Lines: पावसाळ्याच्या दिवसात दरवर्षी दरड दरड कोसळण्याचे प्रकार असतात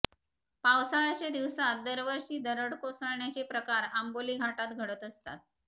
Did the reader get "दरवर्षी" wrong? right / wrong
right